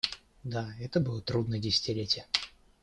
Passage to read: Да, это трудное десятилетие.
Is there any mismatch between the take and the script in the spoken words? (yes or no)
yes